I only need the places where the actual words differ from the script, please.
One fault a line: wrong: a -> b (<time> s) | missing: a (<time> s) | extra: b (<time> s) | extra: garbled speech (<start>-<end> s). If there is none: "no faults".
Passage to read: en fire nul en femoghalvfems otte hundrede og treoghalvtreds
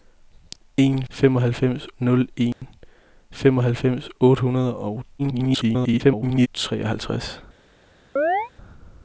wrong: fire -> femoghalvfems (1.1 s)
extra: garbled speech (5.2-6.5 s)